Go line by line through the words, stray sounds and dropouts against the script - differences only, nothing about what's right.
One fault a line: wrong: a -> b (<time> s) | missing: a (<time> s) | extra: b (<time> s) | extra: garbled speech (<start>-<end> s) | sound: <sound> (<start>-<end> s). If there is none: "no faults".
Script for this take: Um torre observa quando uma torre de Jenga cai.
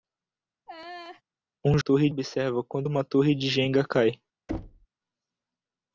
sound: laugh (0.7-1.2 s)
sound: thud (4.5-4.9 s)